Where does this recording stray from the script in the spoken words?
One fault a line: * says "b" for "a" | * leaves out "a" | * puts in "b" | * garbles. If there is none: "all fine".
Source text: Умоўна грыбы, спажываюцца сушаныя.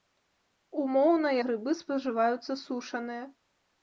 all fine